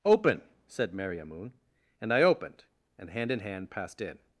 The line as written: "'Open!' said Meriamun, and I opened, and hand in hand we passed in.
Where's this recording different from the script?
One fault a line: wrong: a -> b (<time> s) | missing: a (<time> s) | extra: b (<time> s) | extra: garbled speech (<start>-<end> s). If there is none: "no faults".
missing: we (3.7 s)